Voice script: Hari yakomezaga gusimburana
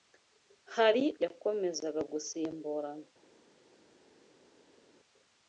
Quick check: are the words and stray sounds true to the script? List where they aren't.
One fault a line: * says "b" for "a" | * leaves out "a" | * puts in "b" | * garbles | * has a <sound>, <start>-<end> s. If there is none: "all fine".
all fine